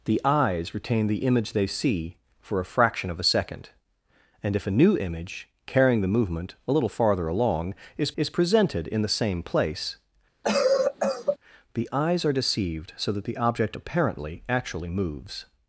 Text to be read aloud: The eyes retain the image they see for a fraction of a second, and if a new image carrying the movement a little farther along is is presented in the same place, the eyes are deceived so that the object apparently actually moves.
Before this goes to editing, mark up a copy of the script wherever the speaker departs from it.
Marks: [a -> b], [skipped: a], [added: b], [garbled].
The eyes retain the image they see for a fraction of a second, and if a new image carrying the movement a little farther along is is presented in the same place, the eyes are deceived so that the object apparently actually moves.